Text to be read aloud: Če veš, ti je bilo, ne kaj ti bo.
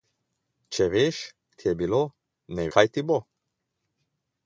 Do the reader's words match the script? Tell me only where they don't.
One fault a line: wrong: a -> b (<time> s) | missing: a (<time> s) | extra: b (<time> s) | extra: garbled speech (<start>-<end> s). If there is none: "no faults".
no faults